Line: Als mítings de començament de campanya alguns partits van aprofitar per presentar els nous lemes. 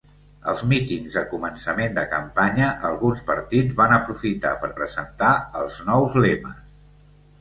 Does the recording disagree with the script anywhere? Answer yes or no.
no